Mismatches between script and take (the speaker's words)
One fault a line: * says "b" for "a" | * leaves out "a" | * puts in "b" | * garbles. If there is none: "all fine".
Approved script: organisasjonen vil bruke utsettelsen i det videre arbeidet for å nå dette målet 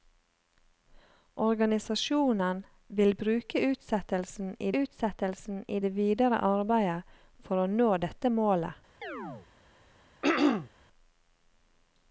* puts in "utsettelsen i"